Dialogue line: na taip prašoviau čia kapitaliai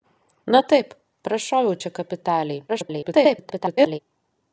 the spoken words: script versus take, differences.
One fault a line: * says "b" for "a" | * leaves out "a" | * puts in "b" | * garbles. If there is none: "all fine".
* garbles